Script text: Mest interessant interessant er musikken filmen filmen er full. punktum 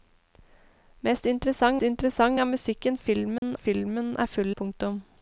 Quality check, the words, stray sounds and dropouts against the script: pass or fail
fail